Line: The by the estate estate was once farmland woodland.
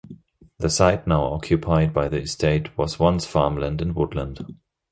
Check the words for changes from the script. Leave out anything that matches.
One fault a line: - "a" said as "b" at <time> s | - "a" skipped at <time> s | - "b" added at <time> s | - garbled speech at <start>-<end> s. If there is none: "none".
- "site now occupied" added at 0.7 s
- "estate" skipped at 2.8 s
- "and" added at 3.8 s